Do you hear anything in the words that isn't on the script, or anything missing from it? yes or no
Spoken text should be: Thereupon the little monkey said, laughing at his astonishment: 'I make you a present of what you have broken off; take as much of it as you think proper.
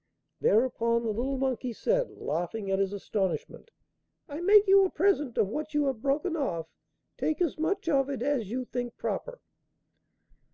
no